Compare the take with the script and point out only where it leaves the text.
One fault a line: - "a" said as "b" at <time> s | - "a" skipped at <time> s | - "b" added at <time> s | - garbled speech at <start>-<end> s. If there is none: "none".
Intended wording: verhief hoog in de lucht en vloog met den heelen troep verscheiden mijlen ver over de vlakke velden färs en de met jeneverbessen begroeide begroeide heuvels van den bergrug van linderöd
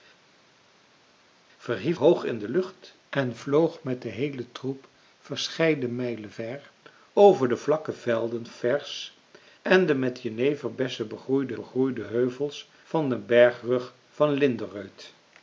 none